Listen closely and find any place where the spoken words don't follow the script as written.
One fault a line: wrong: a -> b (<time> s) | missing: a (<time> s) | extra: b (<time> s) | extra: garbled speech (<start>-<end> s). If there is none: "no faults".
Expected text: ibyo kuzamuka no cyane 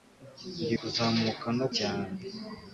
no faults